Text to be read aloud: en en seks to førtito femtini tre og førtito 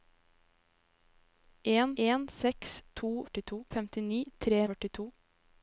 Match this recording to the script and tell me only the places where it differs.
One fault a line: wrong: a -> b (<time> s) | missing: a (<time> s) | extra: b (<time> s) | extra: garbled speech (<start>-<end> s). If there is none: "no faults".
no faults